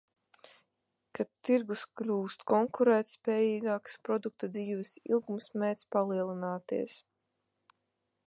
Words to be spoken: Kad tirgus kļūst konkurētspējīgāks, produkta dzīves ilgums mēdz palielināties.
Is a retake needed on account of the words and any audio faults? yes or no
no